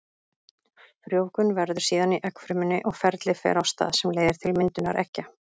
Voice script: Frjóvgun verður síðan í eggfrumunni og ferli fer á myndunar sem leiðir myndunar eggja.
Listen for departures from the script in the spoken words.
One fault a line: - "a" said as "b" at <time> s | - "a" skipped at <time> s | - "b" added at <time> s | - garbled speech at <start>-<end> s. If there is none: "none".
- "myndunar" said as "stað" at 3.7 s
- "til" added at 4.5 s